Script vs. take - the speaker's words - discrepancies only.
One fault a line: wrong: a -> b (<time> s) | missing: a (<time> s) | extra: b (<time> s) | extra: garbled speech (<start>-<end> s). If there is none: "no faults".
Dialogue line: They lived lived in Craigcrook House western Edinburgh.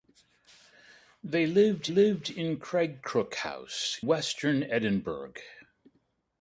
no faults